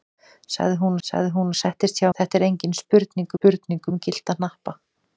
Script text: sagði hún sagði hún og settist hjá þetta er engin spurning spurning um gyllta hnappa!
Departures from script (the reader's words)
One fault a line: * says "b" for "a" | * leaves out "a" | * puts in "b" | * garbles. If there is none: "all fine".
all fine